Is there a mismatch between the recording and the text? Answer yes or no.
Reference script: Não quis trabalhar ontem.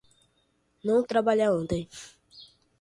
yes